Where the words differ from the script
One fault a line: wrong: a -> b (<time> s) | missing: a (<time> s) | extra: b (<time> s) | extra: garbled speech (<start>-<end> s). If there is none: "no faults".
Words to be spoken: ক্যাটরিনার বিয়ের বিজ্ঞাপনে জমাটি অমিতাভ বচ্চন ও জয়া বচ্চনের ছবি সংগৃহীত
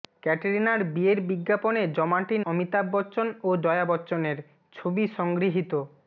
no faults